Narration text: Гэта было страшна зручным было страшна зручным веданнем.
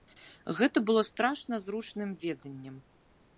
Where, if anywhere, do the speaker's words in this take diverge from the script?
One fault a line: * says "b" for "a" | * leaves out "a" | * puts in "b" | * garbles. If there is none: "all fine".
* leaves out "было страшна зручным"